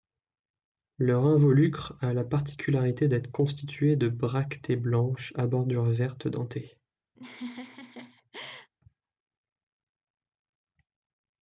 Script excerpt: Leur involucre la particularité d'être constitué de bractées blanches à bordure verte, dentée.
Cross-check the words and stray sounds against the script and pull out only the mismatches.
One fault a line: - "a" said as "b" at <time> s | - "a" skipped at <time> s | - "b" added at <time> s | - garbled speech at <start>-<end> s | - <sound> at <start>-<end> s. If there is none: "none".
- "a" added at 2.0 s
- laugh at 7.2-8.7 s